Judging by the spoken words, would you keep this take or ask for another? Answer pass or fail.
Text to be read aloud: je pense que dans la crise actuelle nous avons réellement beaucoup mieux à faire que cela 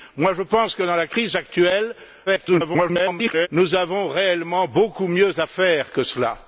fail